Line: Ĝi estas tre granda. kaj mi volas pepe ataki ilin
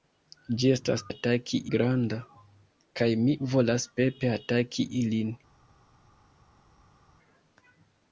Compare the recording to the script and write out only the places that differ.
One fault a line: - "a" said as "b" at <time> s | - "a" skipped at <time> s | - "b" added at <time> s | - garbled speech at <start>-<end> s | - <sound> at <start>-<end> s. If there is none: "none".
- "tre" said as "ataki" at 1.1 s